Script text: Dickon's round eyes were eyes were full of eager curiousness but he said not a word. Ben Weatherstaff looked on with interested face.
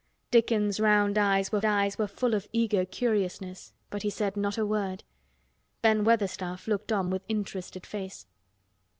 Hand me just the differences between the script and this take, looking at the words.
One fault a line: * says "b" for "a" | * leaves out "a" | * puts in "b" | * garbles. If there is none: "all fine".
all fine